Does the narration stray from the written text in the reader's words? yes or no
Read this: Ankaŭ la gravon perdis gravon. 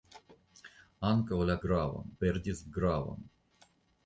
no